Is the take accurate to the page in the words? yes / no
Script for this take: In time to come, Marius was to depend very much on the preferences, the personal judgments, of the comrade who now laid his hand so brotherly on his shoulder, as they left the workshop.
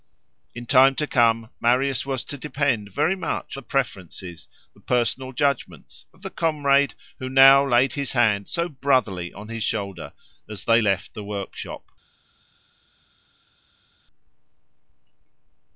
no